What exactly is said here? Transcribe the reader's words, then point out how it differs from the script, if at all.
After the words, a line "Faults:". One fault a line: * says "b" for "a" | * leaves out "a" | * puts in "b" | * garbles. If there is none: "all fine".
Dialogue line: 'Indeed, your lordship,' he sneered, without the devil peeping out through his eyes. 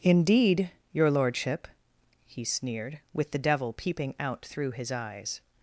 'Indeed, your lordship,' he sneered, with the devil peeping out through his eyes.
Faults:
* says "with" for "without"